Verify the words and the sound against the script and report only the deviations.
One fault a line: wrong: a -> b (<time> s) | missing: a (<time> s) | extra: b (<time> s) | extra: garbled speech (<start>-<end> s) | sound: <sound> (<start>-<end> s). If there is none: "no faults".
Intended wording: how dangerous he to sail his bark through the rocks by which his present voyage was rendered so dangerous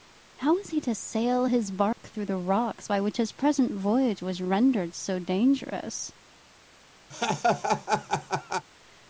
wrong: dangerous -> was (0.6 s)
sound: dropout (1.9-2.0 s)
sound: laugh (7.1-8.7 s)